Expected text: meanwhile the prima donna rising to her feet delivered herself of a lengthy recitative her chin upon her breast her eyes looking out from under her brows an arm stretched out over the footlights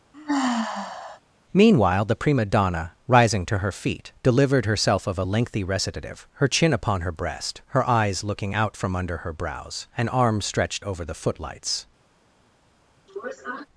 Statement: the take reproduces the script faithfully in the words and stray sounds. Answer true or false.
false